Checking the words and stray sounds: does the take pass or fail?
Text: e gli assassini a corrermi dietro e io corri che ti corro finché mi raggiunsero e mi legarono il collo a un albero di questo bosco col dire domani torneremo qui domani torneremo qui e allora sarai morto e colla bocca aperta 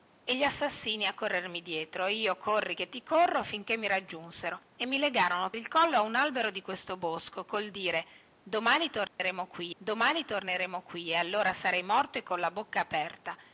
fail